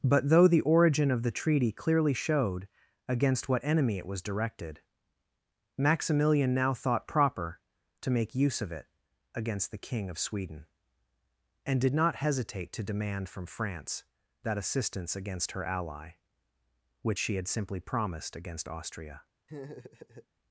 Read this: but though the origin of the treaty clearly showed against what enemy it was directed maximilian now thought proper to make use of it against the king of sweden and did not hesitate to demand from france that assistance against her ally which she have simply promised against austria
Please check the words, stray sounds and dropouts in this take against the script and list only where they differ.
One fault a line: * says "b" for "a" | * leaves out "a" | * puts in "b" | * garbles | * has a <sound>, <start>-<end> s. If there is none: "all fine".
* says "had" for "have"
* has a laugh, 19.5-20.3 s